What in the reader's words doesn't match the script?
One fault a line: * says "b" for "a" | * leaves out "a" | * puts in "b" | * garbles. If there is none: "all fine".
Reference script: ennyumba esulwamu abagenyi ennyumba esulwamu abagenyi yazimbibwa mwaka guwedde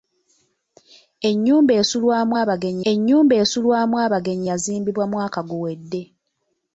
all fine